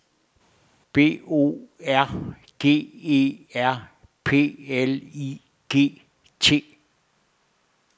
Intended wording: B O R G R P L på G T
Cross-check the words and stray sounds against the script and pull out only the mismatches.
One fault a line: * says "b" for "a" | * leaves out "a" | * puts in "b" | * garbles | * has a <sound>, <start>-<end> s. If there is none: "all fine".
* puts in "E"
* says "I" for "på"